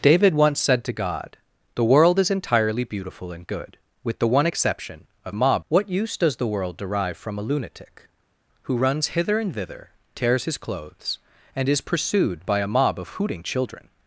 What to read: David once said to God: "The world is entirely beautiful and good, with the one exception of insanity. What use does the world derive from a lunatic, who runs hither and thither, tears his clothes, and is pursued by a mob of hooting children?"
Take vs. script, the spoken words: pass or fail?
fail